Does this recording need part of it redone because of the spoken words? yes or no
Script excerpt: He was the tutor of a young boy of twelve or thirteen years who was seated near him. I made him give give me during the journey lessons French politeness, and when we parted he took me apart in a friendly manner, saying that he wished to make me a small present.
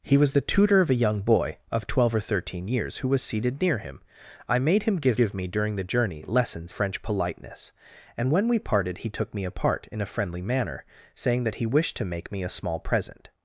no